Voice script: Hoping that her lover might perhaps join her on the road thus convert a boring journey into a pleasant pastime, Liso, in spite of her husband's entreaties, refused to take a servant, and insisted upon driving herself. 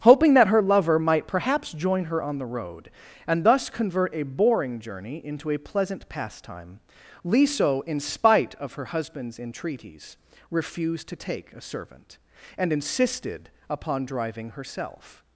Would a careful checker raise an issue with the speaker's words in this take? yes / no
yes